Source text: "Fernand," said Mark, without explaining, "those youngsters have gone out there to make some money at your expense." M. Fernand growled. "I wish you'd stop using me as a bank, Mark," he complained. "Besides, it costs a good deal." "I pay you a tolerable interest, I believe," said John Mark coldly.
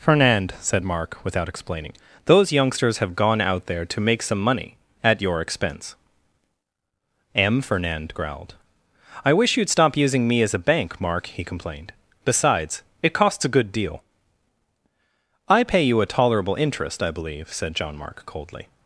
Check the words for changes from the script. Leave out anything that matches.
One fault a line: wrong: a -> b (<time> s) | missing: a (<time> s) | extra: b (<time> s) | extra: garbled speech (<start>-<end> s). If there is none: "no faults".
no faults